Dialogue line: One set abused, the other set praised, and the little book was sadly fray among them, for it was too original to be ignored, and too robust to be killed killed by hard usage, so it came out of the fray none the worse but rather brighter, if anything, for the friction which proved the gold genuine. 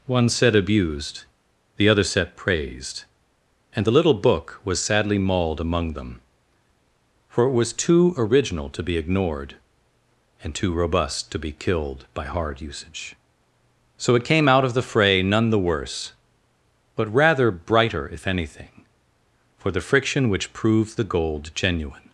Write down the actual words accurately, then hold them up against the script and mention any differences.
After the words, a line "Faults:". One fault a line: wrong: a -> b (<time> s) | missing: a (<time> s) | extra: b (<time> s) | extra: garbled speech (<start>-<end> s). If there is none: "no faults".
One set abused, the other set praised, and the little book was sadly mauled among them, for it was too original to be ignored, and too robust to be killed by hard usage, so it came out of the fray none the worse but rather brighter, if anything, for the friction which proved the gold genuine.
Faults:
wrong: fray -> mauled (5.2 s)
missing: killed (12.1 s)